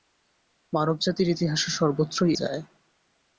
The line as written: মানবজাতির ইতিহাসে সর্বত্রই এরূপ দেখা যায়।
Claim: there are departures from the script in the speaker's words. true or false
true